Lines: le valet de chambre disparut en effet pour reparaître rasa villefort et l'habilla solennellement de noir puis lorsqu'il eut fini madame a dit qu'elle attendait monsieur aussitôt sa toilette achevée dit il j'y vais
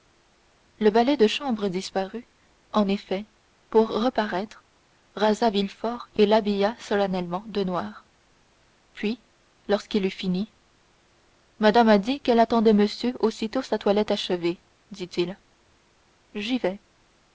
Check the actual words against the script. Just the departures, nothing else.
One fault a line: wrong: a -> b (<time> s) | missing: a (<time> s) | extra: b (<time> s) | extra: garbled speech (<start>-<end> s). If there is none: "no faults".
no faults